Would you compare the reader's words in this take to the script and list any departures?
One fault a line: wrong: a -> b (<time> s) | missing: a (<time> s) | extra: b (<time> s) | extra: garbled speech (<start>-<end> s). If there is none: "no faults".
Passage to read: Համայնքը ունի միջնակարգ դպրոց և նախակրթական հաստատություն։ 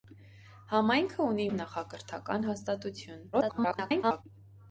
missing: միջնակարգ դպրոց (1.4 s)
extra: garbled speech (3.3-4.2 s)